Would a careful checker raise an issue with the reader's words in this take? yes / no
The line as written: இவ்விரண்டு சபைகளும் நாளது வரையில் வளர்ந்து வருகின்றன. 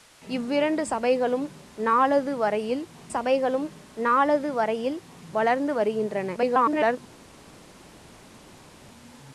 yes